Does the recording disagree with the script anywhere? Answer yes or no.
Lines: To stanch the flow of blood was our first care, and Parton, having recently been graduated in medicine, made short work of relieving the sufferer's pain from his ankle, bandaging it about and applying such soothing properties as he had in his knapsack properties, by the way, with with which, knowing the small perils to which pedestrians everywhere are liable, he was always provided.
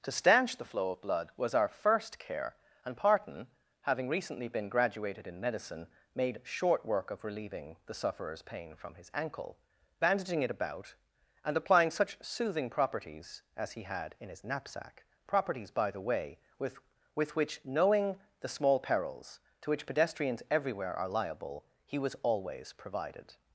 no